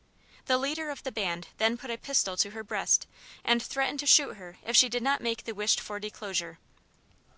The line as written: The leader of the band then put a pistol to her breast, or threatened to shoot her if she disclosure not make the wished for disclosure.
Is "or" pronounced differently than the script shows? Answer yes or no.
yes